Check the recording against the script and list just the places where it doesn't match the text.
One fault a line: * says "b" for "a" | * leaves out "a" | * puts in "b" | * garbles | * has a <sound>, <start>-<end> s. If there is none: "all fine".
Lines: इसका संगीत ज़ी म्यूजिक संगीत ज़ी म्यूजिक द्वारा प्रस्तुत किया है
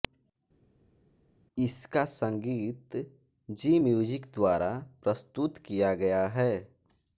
* leaves out "संगीत ज़ी म्यूजिक"
* puts in "गया"